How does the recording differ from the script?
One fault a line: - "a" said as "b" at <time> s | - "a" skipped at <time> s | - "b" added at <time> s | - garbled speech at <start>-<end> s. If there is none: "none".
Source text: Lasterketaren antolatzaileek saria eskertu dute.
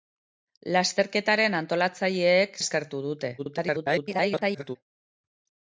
- "saria" skipped at 2.6 s
- garbled speech at 3.4-4.8 s